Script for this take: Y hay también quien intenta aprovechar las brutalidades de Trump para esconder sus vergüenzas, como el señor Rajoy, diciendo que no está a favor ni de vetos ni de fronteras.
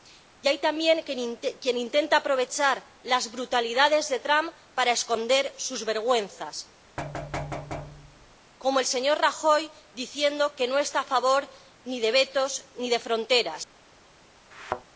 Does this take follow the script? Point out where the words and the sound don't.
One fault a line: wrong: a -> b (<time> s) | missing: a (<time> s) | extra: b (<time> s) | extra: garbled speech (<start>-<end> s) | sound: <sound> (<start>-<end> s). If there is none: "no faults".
sound: thud (7.0-8.4 s)
sound: thud (14.5-14.8 s)